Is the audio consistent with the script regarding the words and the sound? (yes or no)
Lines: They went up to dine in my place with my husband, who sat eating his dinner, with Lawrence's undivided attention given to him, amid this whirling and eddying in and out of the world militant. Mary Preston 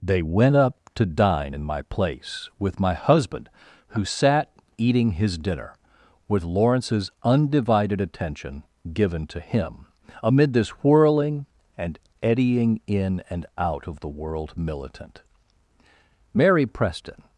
yes